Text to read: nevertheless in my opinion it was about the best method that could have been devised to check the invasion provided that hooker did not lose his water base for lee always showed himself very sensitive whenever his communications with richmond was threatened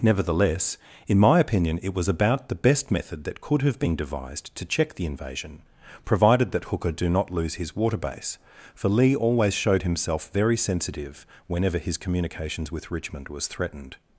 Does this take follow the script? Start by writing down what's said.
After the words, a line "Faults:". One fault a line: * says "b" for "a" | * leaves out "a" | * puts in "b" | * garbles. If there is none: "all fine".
nevertheless in my opinion it was about the best method that could have been devised to check the invasion provided that hooker do not lose his water base for lee always showed himself very sensitive whenever his communications with richmond was threatened
Faults:
* says "do" for "did"